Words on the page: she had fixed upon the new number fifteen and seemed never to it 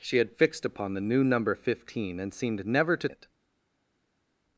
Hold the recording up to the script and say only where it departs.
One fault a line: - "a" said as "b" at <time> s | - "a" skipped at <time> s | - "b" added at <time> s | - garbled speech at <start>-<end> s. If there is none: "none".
none